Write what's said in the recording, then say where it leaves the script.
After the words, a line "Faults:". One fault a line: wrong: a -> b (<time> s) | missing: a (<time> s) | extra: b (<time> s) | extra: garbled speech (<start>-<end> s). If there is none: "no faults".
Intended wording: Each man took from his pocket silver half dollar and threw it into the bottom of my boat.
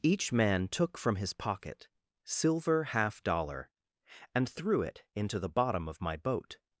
Each man took from his pocket silver half dollar and threw it into the bottom of my boat.
Faults:
no faults